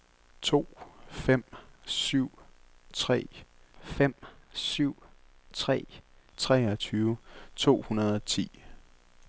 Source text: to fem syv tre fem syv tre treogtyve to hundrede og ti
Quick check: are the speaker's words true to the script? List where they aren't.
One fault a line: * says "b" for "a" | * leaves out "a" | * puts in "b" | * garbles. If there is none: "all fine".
all fine